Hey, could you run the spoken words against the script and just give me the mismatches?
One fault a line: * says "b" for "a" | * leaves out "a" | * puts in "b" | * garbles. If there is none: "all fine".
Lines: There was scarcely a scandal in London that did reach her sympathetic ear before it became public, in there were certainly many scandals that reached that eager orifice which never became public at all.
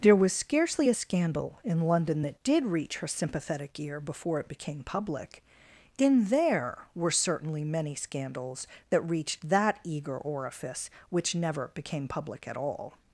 all fine